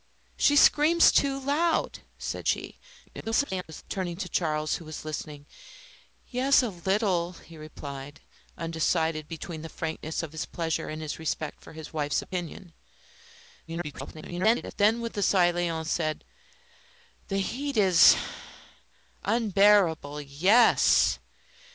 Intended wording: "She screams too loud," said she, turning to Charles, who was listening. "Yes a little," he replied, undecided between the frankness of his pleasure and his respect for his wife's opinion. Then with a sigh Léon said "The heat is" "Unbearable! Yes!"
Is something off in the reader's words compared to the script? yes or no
yes